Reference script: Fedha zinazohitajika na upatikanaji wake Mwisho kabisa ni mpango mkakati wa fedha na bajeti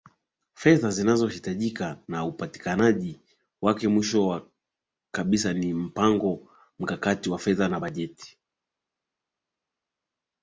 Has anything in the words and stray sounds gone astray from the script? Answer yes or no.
no